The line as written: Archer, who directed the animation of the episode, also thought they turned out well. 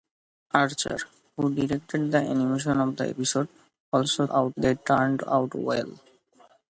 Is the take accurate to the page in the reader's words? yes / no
no